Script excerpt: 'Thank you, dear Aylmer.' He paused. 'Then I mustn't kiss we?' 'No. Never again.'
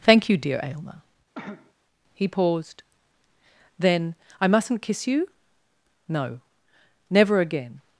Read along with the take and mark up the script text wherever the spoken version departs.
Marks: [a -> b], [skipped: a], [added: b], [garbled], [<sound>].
'Thank you, dear Aylmer.' [cough] He paused. 'Then I mustn't kiss [we?' -> you] 'No. Never again.'